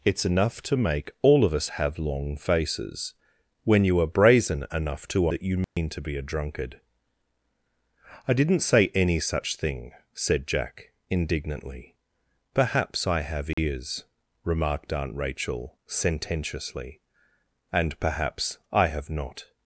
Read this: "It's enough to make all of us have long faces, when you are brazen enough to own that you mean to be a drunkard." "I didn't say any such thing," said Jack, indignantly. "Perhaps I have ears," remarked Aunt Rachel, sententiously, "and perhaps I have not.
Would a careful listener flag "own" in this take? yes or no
yes